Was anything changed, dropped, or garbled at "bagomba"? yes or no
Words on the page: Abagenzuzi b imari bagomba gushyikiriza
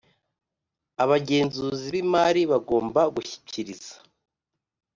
no